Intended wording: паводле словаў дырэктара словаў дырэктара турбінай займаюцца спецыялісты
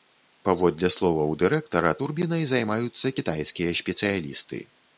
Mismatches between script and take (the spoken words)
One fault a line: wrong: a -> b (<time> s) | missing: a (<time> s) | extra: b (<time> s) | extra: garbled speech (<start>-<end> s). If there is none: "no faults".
missing: словаў дырэктара (1.9 s)
extra: кітайскія (3.2 s)